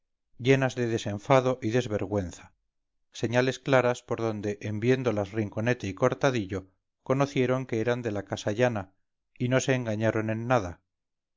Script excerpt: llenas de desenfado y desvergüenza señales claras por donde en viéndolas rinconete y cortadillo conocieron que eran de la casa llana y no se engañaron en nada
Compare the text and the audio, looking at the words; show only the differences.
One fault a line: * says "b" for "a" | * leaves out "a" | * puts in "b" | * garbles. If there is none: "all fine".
all fine